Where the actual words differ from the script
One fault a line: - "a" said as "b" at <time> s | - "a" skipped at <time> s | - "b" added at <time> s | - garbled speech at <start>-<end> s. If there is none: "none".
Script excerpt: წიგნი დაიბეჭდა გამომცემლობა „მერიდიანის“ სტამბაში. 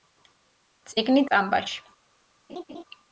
- "დაიბეჭდა გამომცემლობა მერიდიანის" skipped at 1.2 s